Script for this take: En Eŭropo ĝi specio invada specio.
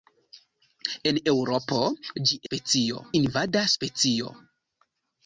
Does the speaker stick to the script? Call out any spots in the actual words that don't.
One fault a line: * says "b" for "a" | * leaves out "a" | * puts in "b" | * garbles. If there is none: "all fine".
all fine